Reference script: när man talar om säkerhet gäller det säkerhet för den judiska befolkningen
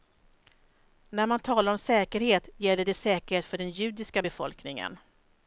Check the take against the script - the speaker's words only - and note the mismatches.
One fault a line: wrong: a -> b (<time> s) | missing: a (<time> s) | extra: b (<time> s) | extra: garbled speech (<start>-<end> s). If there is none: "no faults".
no faults